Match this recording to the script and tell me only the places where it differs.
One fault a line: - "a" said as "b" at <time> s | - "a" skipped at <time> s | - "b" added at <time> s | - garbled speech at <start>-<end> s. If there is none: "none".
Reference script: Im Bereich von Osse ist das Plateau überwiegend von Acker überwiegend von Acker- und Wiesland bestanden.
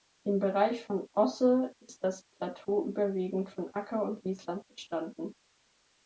- "überwiegend von Acker" skipped at 4.0 s